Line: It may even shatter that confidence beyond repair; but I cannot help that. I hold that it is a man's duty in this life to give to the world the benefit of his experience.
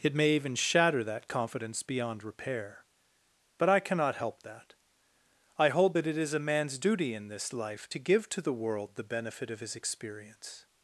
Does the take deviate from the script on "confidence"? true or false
false